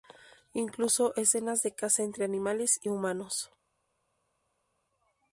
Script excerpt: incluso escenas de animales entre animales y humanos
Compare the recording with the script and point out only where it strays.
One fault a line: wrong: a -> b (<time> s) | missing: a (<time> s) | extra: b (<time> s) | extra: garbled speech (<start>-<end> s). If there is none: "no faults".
wrong: animales -> caza (1.8 s)